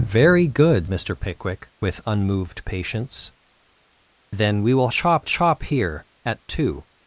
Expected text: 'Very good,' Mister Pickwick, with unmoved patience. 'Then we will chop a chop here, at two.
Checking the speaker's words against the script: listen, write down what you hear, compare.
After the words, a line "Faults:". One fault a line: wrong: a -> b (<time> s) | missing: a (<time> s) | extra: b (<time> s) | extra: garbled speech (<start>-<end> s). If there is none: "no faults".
'Very good,' Mister Pickwick, with unmoved patience. 'Then we will chop a chop here, at two.
Faults:
no faults